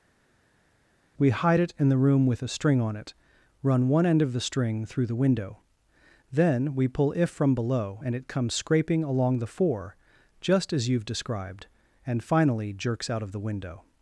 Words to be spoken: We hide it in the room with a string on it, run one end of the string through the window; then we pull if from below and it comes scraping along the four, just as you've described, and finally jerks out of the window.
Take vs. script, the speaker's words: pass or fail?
pass